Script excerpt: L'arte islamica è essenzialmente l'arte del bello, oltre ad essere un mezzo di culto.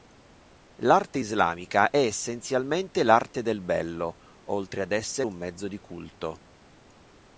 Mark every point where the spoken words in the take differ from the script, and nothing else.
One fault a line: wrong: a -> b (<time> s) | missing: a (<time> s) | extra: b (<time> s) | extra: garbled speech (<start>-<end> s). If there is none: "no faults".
no faults